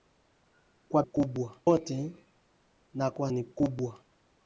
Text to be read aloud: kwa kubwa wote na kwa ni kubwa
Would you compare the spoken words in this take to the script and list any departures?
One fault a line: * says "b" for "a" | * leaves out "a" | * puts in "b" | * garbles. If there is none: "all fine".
all fine